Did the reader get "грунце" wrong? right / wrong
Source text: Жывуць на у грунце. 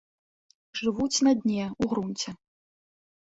right